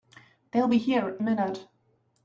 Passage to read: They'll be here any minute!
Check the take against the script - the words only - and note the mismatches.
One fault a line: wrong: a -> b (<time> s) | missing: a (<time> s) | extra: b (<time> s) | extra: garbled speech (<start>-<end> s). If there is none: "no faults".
missing: any (1.2 s)